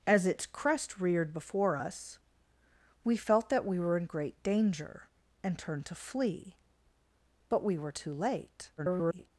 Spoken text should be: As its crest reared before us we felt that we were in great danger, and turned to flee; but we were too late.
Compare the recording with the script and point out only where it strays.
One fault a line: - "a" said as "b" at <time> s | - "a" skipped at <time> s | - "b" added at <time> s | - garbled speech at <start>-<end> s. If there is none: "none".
- garbled speech at 8.8-9.3 s